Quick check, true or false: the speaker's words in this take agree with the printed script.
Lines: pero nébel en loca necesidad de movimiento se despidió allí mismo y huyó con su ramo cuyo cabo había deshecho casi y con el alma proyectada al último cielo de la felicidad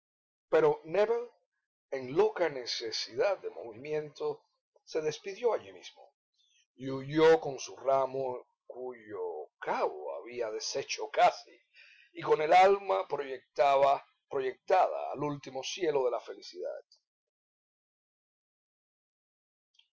true